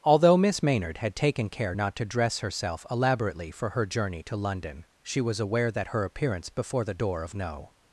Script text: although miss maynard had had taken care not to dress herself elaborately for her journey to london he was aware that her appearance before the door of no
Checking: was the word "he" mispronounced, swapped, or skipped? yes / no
yes